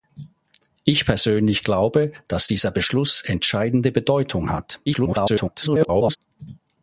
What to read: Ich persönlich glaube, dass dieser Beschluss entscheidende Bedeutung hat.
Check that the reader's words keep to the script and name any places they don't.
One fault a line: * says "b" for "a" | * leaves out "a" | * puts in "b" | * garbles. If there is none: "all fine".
* garbles